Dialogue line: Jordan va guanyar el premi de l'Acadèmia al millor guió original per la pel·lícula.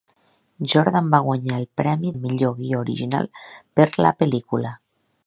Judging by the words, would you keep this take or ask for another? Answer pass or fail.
fail